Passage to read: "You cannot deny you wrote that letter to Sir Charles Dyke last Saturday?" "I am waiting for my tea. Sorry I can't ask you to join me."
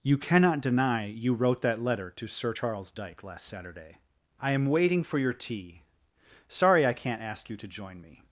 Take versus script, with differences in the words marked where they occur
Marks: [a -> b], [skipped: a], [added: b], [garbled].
"You cannot deny you wrote that letter to Sir Charles Dyke last Saturday?" "I am waiting for [my -> your] tea. Sorry I can't ask you to join me."